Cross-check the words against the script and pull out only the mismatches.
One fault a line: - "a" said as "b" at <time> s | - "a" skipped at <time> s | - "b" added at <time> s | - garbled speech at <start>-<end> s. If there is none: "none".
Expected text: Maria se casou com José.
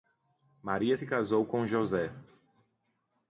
none